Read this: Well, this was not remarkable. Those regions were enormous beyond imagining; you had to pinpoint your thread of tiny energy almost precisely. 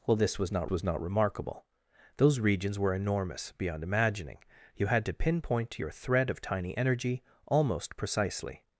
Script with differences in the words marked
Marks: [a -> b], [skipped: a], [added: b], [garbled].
Well, this was not [added: was not] remarkable. Those regions were enormous beyond imagining; you had to pinpoint your thread of tiny energy almost precisely.